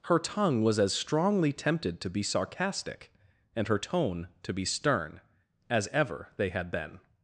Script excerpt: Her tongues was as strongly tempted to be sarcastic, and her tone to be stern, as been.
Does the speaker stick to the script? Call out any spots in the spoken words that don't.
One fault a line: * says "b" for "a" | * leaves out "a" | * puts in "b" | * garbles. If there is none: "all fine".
* says "tongue" for "tongues"
* puts in "ever they had"